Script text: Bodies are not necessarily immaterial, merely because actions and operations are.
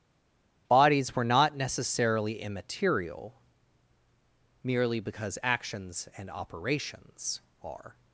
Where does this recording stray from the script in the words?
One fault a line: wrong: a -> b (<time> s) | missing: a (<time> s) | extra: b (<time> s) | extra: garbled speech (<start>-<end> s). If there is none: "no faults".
wrong: are -> were (1.1 s)